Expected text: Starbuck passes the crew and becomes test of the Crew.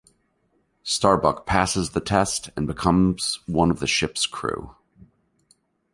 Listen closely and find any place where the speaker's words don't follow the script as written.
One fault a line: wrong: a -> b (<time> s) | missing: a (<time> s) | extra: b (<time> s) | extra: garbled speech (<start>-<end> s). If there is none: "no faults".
wrong: crew -> test (2.0 s)
wrong: test -> one (3.5 s)
extra: Ship's (3.9 s)